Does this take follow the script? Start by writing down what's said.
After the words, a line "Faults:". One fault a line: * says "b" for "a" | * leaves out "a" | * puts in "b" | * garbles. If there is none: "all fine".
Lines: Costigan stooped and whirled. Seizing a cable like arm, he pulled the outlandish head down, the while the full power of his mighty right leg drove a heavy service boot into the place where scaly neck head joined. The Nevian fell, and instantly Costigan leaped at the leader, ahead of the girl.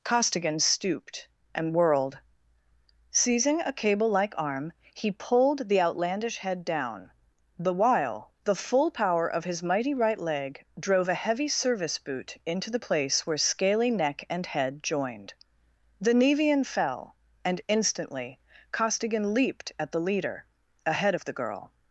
Costigan stooped and whirled. Seizing a cable like arm, he pulled the outlandish head down, the while the full power of his mighty right leg drove a heavy service boot into the place where scaly neck and head joined. The Nevian fell, and instantly Costigan leaped at the leader, ahead of the girl.
Faults:
* puts in "and"